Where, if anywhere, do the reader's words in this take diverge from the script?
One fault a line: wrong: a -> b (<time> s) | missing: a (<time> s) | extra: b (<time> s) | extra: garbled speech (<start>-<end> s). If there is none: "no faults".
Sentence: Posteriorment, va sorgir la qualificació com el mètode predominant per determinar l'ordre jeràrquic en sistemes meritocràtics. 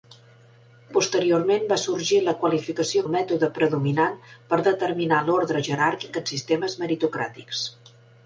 missing: com (3.0 s)